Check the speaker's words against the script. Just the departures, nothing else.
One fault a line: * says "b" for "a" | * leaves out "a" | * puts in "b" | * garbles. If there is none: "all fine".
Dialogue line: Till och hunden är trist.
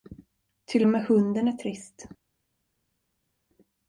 * puts in "med"